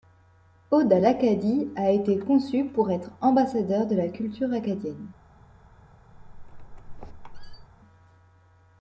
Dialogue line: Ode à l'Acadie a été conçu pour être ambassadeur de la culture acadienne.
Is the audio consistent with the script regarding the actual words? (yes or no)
yes